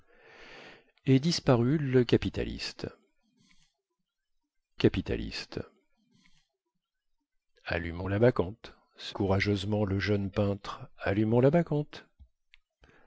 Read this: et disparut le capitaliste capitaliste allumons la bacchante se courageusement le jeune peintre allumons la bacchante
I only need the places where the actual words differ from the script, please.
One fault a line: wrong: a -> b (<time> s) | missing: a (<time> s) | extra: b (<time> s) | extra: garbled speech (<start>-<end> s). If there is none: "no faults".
no faults